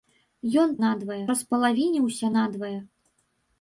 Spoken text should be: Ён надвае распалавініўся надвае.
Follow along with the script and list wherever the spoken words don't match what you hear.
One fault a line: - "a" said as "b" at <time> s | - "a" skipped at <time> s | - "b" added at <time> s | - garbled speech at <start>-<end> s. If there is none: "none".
none